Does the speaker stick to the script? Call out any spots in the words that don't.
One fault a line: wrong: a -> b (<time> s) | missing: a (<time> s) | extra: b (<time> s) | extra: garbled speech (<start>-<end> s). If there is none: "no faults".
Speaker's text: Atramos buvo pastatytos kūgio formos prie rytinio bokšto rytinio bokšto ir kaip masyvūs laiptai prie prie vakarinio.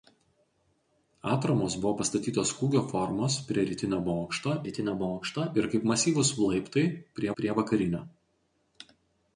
no faults